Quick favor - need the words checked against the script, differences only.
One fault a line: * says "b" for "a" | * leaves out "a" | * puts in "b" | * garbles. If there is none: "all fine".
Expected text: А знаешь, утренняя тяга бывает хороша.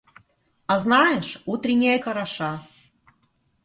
* leaves out "тяга бывает"